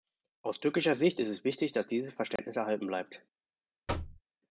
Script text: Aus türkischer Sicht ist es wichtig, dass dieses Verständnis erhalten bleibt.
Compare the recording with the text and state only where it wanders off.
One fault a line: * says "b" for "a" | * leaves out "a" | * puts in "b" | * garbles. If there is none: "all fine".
all fine